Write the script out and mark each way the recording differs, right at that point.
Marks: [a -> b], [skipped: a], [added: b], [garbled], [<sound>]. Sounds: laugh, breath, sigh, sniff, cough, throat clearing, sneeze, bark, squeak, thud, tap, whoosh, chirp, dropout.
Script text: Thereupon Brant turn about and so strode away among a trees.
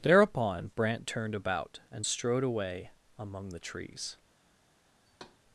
Thereupon Brant [turn -> turned] about and [skipped: so] strode away among [a -> the] trees. [thud]